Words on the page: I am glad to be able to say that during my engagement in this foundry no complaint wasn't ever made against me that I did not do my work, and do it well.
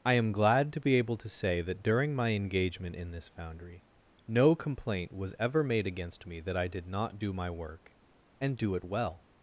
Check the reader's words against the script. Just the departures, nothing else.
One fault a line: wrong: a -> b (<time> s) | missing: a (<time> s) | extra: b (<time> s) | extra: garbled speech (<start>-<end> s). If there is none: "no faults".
wrong: wasn't -> was (5.1 s)